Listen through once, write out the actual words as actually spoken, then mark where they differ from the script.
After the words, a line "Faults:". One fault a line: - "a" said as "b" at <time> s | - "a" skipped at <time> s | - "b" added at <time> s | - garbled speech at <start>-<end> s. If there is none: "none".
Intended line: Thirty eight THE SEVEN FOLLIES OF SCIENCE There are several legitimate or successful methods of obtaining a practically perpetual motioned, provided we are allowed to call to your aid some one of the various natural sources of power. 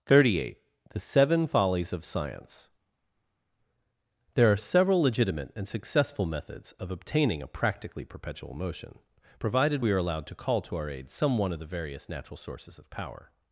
Thirty eight THE SEVEN FOLLIES OF SCIENCE There are several legitimate and successful methods of obtaining a practically perpetual motion, provided we are allowed to call to our aid some one of the various natural sources of power.
Faults:
- "or" said as "and" at 5.5 s
- "motioned" said as "motion" at 8.6 s
- "your" said as "our" at 10.8 s